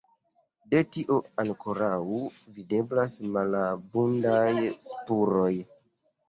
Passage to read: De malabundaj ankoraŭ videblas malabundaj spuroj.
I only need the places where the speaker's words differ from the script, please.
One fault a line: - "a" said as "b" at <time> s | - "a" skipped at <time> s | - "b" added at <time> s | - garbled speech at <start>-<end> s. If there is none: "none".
- "malabundaj" said as "tio" at 0.9 s